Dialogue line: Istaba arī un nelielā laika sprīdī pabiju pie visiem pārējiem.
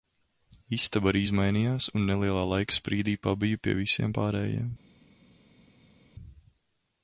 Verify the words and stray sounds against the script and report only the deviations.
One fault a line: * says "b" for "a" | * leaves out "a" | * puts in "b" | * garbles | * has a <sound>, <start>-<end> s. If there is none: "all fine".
* puts in "izmainījās"